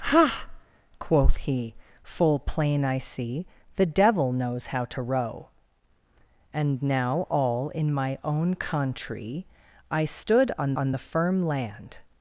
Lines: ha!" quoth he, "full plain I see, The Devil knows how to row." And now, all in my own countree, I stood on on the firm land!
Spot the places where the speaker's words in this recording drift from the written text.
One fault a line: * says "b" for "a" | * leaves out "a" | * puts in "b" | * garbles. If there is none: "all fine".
all fine